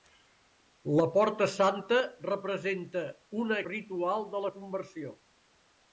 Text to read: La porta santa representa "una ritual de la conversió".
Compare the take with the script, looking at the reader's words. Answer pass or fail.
pass